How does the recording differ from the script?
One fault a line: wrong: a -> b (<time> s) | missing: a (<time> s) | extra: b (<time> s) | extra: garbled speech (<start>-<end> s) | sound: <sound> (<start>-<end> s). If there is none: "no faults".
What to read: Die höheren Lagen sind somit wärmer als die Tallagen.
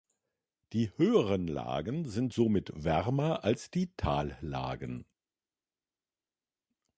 no faults